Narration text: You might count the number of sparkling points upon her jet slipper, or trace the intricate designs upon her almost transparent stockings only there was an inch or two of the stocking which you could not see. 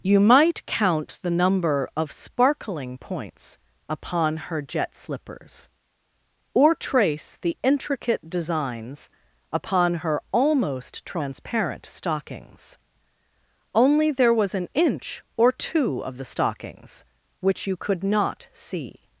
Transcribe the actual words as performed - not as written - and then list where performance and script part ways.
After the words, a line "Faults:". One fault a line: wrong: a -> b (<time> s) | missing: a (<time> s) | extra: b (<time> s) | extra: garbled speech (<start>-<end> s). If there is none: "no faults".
You might count the number of sparkling points upon her jet slippers, or trace the intricate designs upon her almost transparent stockings only there was an inch or two of the stockings which you could not see.
Faults:
wrong: slipper -> slippers (5.0 s)
wrong: stocking -> stockings (16.2 s)